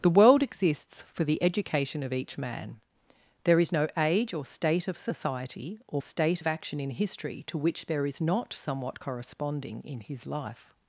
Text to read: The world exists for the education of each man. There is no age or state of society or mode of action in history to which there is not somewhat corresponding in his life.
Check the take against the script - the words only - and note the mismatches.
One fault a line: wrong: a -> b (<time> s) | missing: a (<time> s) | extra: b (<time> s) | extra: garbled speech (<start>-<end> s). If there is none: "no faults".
wrong: mode -> state (6.0 s)